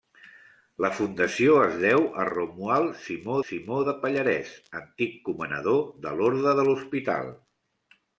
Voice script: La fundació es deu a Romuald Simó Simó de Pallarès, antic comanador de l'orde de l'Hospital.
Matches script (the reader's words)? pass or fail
pass